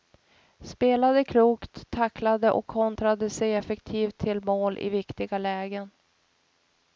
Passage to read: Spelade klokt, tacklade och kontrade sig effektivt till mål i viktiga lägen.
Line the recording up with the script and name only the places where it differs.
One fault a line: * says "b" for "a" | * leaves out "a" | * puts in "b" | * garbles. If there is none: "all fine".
all fine